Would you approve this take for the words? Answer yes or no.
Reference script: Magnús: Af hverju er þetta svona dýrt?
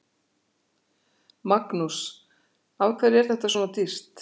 yes